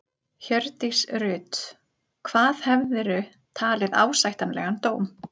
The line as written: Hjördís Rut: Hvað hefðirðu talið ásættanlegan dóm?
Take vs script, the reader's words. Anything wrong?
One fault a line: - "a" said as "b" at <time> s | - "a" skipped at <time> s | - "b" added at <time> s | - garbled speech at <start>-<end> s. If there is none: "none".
none